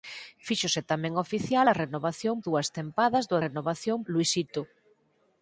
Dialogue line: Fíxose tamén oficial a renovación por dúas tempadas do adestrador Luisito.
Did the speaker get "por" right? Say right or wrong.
wrong